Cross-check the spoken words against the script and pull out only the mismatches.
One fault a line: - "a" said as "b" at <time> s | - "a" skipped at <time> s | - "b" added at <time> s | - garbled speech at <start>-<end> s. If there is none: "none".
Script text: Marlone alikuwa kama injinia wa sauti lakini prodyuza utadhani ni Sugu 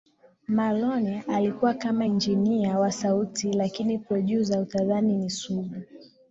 none